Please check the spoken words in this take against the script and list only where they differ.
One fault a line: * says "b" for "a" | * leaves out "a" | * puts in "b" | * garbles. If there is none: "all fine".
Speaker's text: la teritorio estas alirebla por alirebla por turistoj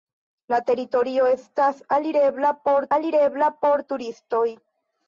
all fine